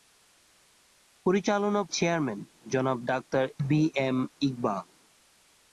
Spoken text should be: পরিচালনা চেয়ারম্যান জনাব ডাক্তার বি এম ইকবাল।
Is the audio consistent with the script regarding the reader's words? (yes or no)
yes